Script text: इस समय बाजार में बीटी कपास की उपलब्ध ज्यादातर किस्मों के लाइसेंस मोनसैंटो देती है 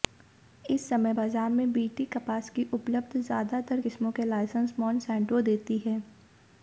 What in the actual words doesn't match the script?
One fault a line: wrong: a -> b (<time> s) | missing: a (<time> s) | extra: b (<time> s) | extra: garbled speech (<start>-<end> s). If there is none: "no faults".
no faults